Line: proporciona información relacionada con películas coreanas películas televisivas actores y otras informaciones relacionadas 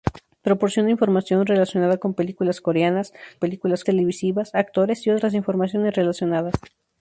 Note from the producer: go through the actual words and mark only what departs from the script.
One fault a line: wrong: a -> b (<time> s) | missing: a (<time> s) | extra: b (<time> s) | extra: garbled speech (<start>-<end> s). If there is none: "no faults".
no faults